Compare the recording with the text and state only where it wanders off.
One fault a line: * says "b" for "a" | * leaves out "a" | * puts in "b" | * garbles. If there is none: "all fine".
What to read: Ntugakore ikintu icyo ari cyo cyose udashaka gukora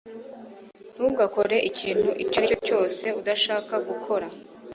all fine